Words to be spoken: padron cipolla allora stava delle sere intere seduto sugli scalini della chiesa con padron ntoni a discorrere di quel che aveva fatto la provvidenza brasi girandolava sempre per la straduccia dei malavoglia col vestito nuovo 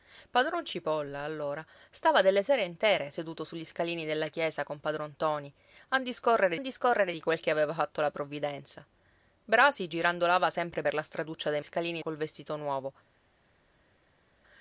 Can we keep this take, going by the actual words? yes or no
no